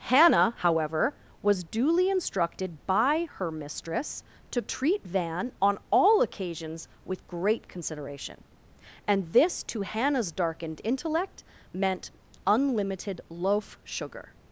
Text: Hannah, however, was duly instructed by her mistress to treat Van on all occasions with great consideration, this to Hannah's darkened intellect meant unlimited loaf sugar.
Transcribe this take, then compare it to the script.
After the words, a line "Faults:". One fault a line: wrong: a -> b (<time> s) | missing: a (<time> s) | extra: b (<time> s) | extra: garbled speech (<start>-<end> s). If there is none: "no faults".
Hannah, however, was duly instructed by her mistress to treat Van on all occasions with great consideration, and this to Hannah's darkened intellect meant unlimited loaf sugar.
Faults:
extra: and (9.1 s)